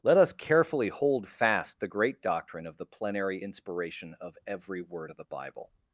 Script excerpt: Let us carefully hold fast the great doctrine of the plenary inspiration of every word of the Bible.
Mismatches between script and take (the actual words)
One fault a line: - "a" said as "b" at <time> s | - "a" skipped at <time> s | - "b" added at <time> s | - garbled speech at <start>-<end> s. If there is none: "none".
none